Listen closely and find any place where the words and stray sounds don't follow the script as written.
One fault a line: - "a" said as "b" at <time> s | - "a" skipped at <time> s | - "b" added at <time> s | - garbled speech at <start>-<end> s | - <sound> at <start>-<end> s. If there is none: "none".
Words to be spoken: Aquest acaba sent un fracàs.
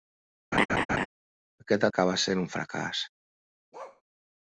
- laugh at 0.5-1.1 s
- bark at 3.7-4.0 s